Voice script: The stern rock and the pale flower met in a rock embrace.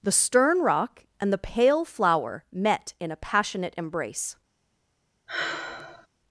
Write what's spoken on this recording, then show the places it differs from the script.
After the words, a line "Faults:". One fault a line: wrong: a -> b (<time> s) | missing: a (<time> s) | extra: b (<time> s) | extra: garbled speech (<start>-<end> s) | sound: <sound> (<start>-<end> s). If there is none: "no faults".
The stern rock and the pale flower met in a passionate embrace.
Faults:
wrong: rock -> passionate (3.2 s)
sound: sigh (5.3-6.1 s)